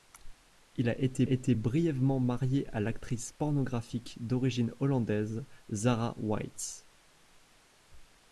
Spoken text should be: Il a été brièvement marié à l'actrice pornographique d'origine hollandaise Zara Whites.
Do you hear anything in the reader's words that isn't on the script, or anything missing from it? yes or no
yes